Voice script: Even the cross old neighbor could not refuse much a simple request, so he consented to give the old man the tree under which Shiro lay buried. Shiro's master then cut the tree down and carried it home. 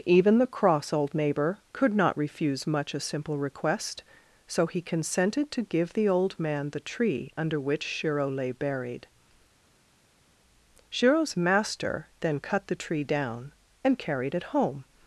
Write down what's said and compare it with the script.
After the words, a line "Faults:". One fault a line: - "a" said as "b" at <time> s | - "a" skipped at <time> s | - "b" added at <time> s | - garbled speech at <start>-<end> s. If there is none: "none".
Even the cross old neighbor could not refuse much a simple request, so he consented to give the old man the tree under which Shiro lay buried. Shiro's master then cut the tree down and carried it home.
Faults:
none